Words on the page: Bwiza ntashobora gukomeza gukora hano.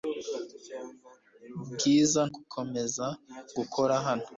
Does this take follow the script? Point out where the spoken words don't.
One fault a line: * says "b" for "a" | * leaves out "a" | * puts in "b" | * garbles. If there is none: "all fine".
* leaves out "ntashobora"